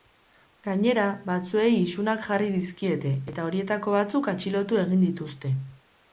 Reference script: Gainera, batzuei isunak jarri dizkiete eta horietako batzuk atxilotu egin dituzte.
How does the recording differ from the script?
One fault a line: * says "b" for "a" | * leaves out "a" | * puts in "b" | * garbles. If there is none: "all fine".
all fine